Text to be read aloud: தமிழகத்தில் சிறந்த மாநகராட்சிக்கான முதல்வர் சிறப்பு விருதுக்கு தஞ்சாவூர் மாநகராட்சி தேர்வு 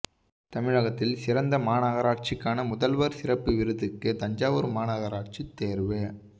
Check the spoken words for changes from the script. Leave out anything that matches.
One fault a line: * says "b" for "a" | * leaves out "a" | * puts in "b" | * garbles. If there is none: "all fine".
all fine